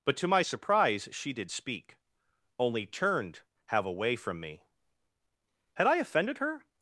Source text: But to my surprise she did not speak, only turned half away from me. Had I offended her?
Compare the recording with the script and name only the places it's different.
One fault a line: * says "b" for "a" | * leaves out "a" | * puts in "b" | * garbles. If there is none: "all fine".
* leaves out "not"
* says "have" for "half"